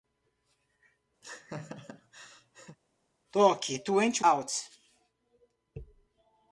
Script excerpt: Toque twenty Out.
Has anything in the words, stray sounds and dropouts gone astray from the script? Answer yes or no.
yes